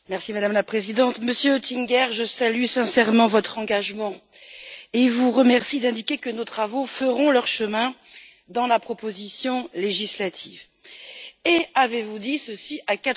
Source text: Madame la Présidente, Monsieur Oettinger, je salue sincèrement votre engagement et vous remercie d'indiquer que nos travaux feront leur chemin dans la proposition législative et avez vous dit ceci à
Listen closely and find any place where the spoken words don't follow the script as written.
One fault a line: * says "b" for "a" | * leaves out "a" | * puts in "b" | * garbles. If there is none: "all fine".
all fine